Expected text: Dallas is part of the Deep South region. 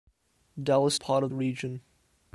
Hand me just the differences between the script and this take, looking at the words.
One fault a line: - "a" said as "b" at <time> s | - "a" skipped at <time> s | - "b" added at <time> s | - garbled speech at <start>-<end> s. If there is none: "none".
- "is" skipped at 1.0 s
- "the Deep South" skipped at 1.3 s